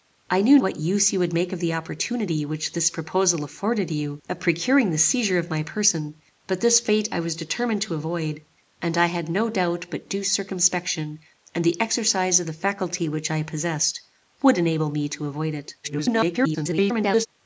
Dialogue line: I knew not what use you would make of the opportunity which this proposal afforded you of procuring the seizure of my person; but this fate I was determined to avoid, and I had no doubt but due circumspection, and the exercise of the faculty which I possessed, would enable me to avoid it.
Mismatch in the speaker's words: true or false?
true